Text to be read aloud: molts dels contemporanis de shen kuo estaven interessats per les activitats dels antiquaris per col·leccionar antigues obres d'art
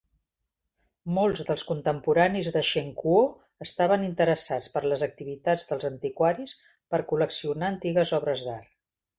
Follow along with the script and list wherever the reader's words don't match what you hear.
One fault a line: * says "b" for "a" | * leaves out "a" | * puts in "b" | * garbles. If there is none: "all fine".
all fine